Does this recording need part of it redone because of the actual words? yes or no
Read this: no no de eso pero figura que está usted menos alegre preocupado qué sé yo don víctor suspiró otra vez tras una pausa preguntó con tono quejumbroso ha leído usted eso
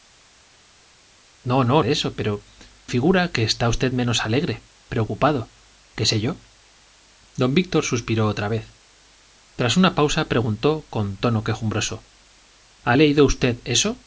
no